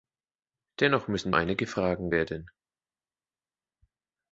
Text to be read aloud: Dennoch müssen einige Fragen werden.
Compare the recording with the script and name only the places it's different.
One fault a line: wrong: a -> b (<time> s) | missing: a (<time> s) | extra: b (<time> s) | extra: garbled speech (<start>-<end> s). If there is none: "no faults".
no faults